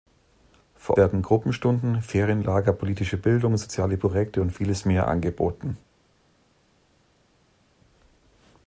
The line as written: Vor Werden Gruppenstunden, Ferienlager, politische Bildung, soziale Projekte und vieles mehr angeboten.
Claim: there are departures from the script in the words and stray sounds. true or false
false